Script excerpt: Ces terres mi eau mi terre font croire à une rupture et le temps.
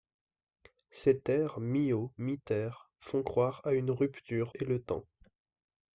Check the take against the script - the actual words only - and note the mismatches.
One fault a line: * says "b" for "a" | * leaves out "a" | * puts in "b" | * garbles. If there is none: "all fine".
all fine